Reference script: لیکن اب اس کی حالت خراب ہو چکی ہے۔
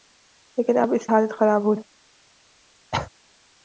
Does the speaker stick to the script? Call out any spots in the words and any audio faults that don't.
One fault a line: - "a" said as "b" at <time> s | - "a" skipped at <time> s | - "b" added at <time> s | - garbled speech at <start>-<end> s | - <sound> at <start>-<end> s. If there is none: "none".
- "کی" skipped at 1.1 s
- "چکی" skipped at 1.7 s
- cough at 2.9-3.1 s